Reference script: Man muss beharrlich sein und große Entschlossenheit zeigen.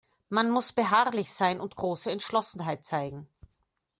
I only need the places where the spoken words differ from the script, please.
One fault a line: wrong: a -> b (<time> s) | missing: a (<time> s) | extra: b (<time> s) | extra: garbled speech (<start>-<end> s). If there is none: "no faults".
no faults